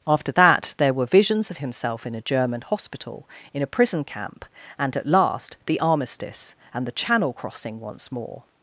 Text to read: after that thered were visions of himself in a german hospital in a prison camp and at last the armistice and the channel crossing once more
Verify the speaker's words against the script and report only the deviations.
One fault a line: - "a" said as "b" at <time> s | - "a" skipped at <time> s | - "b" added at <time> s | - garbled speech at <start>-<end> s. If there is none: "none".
- "thered" said as "there" at 0.8 s